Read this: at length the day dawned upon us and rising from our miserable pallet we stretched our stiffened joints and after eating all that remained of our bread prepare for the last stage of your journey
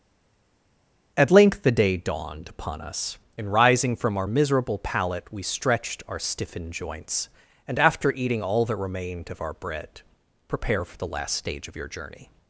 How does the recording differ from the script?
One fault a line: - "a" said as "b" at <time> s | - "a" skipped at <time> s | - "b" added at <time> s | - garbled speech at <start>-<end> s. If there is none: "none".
none